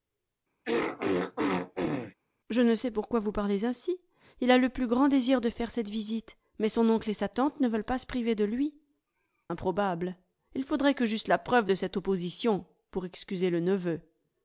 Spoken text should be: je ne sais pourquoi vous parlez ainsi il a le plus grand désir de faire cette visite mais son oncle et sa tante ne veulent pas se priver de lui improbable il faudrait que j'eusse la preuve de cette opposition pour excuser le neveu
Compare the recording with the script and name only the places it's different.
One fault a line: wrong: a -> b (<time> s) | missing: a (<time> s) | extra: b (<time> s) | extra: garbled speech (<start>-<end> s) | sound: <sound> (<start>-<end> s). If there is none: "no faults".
sound: throat clearing (0.6-2.1 s)